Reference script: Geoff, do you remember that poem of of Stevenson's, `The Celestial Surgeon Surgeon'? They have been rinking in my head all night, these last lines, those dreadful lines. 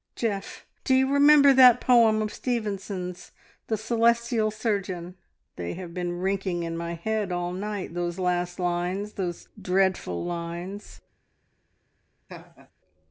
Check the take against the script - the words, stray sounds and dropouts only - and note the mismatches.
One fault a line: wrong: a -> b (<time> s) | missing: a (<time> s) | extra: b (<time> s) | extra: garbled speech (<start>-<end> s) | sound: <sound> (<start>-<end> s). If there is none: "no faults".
missing: of (2.3 s)
missing: Surgeon (5.1 s)
wrong: these -> those (7.9 s)
sound: laugh (12.3-12.7 s)